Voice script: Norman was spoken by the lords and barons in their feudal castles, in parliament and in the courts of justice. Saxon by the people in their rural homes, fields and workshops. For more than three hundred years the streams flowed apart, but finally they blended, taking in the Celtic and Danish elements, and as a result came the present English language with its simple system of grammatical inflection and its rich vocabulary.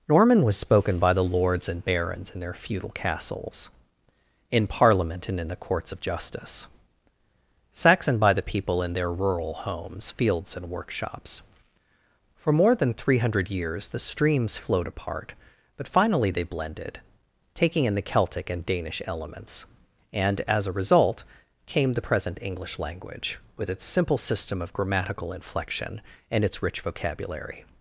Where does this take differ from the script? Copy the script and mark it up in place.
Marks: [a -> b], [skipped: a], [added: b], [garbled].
Norman was spoken by the lords and barons in their feudal castles, in parliament and in the courts of justice. Saxon by the people in their rural homes, fields and workshops. For more than three hundred years the streams flowed apart, but finally they blended, taking in the Celtic and Danish elements, and as a result came the present English language with its simple system of grammatical inflection and its rich vocabulary.